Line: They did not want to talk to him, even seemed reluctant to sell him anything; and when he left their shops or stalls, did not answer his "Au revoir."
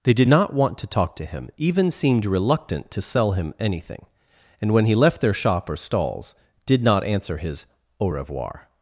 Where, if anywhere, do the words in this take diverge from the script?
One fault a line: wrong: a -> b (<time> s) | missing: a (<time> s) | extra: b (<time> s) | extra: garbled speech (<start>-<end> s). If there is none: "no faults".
wrong: shops -> shop (5.3 s)